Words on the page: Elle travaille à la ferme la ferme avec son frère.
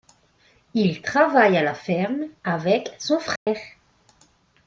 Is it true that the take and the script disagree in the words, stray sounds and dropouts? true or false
true